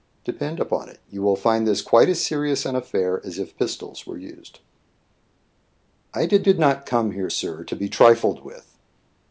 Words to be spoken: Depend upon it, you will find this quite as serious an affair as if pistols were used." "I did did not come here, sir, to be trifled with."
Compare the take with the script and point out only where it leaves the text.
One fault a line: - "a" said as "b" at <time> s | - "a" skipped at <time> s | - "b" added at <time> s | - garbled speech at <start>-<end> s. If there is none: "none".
none